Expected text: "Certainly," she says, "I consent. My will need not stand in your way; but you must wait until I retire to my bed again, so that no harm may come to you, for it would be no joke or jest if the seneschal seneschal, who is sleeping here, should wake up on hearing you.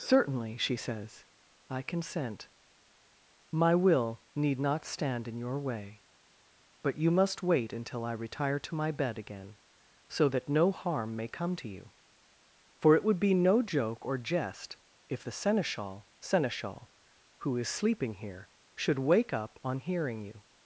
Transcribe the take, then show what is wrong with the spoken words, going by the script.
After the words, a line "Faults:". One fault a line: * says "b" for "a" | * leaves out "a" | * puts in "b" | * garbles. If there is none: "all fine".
"Certainly," she says, "I consent. My will need not stand in your way; but you must wait until I retire to my bed again, so that no harm may come to you, for it would be no joke or jest if the seneschal seneschal, who is sleeping here, should wake up on hearing you.
Faults:
all fine